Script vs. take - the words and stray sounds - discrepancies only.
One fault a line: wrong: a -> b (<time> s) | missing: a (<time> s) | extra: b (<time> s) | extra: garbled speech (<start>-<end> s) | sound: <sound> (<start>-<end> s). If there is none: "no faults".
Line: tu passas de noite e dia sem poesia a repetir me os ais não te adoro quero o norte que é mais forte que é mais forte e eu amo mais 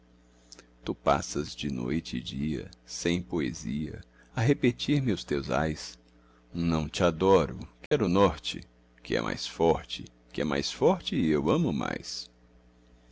extra: teus (5.2 s)
sound: dropout (7.9-7.9 s)